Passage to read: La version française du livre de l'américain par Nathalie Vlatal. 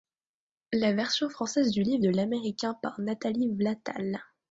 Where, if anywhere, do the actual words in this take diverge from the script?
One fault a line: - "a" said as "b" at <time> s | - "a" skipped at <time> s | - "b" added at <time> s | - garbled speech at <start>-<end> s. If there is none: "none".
none